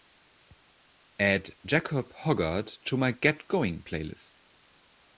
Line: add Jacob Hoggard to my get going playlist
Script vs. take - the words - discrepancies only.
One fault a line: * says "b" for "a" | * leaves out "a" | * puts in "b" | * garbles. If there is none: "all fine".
all fine